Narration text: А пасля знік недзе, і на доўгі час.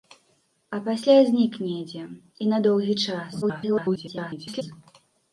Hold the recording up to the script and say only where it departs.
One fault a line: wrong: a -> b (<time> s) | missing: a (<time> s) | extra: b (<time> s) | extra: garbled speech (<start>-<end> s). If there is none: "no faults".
extra: garbled speech (3.4-4.6 s)